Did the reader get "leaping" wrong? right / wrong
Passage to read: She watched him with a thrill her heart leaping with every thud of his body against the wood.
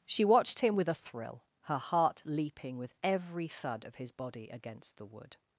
right